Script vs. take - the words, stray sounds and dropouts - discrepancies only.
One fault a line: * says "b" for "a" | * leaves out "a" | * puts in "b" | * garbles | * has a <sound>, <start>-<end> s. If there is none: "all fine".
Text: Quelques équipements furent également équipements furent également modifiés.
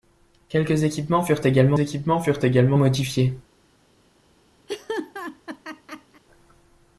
* has a laugh, 4.7-6.2 s